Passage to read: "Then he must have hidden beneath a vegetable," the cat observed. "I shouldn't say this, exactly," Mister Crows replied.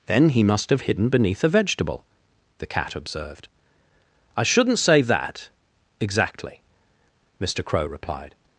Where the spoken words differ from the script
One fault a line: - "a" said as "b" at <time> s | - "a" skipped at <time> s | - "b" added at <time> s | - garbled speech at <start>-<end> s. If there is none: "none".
- "this" said as "that" at 5.0 s
- "Crows" said as "Crow" at 7.6 s